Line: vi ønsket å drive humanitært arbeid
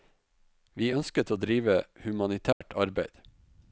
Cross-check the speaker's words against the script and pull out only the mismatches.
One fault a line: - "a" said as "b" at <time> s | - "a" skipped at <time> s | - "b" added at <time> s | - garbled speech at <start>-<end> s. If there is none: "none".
none